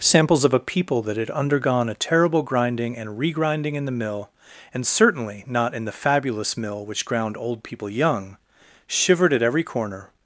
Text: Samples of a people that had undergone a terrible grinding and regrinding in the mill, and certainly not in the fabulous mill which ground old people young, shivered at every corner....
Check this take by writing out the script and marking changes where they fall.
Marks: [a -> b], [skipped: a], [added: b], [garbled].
Samples of a people that had undergone a terrible grinding and regrinding in the mill, and certainly not in the fabulous mill which ground old people young, shivered at every corner....